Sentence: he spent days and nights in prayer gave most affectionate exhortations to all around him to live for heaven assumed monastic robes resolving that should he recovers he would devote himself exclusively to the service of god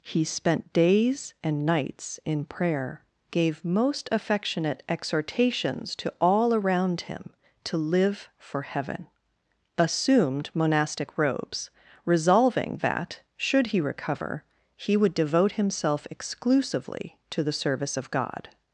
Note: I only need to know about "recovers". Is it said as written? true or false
false